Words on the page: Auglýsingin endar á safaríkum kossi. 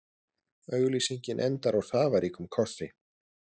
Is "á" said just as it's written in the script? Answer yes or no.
yes